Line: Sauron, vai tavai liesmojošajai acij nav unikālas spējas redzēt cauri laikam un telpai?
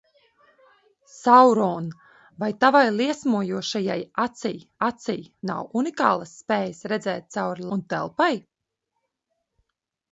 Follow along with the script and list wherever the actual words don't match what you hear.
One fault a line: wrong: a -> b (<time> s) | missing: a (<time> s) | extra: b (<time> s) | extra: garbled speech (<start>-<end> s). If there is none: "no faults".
extra: acij (4.9 s)
missing: laikam (7.7 s)